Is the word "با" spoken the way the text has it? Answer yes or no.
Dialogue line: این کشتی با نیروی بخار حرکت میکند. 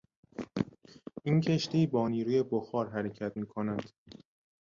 yes